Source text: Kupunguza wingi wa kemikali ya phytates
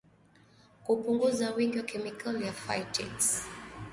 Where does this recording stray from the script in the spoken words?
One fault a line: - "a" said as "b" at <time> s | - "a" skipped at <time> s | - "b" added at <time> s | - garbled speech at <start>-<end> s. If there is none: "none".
none